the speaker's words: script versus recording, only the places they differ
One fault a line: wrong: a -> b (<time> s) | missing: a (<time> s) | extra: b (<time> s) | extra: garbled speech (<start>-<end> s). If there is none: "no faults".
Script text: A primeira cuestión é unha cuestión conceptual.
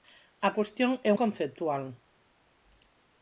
missing: primeira (0.5 s)
missing: unha cuestión (1.1 s)